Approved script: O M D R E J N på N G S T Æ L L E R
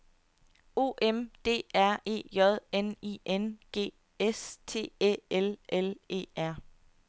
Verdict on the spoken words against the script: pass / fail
fail